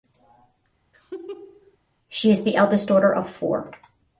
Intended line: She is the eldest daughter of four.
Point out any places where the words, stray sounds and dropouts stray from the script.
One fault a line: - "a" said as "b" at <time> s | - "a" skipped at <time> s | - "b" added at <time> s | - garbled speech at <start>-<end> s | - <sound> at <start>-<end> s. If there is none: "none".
- laugh at 0.9-1.8 s